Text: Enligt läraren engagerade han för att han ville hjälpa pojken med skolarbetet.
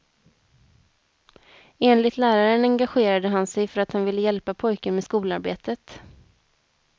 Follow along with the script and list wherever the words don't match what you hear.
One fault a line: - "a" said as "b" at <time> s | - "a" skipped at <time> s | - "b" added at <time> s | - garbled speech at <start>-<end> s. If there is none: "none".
- "sig" added at 3.5 s